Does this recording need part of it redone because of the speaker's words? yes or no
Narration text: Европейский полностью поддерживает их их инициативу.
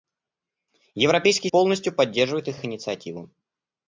no